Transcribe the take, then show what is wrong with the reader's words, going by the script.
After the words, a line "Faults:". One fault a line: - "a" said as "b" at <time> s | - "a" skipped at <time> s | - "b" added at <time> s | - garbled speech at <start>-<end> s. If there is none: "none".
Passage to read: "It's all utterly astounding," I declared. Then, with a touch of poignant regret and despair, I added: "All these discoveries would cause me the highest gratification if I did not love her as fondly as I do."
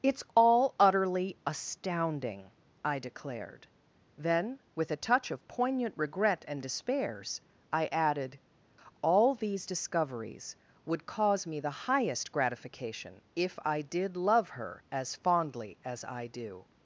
"It's all utterly astounding," I declared. Then, with a touch of poignant regret and despairs, I added: "All these discoveries would cause me the highest gratification if I did love her as fondly as I do."
Faults:
- "despair" said as "despairs" at 6.6 s
- "not" skipped at 14.2 s